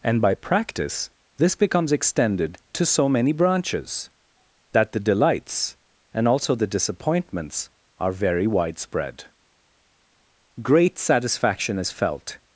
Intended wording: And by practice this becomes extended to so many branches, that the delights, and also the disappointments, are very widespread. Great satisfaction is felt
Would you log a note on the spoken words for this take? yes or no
no